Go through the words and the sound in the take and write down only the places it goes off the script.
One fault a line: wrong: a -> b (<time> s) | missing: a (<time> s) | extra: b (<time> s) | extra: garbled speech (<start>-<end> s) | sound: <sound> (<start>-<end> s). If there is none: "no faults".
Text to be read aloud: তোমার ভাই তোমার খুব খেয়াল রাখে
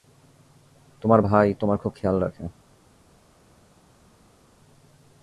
no faults